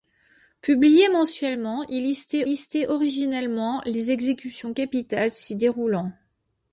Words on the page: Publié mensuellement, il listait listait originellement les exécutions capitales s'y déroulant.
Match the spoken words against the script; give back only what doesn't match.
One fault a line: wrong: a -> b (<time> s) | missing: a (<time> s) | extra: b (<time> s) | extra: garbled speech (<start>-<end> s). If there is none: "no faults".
no faults